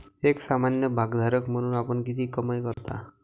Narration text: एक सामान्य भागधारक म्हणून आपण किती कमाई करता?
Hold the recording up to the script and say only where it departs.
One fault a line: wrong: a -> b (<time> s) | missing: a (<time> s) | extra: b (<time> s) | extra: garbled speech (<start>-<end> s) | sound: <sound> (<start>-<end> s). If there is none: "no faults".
sound: dropout (2.7-2.8 s)